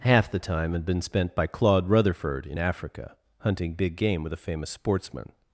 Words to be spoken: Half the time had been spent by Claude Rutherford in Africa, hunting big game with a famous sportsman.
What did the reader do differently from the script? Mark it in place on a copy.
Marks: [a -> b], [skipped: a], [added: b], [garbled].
Half the time had been spent by Claude Rutherford in Africa, hunting big game with a famous sportsman.